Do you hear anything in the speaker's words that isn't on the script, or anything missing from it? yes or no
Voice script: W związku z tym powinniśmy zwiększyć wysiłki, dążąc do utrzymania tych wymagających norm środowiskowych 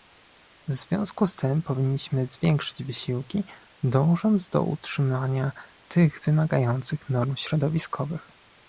no